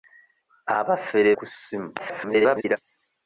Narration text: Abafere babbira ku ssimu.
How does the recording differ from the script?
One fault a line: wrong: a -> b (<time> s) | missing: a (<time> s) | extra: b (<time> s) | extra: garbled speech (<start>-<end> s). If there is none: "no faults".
missing: babbira (1.3 s)
extra: garbled speech (2.0-2.8 s)